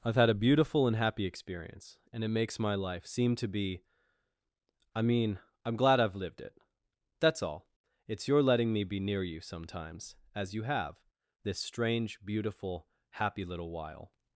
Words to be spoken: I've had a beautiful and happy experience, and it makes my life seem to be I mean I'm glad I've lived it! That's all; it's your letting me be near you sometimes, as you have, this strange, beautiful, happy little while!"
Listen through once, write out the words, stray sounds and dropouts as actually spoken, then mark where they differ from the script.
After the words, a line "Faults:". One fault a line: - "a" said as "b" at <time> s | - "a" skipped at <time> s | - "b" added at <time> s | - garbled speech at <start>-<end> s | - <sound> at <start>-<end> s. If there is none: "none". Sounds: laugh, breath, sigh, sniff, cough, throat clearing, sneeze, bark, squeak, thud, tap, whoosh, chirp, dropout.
I've had a beautiful and happy experience, and it makes my life seem to be I mean I'm glad I've lived it! That's all; it's your letting me be near you sometimes, as you have, this strange, beautiful, happy little while!"
Faults:
none